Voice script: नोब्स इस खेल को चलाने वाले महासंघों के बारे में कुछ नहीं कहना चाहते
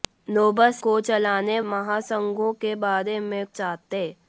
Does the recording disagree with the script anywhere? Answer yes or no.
yes